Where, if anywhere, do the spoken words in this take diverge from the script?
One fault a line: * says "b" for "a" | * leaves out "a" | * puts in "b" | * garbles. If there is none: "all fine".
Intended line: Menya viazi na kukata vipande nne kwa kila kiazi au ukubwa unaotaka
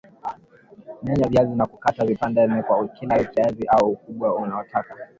all fine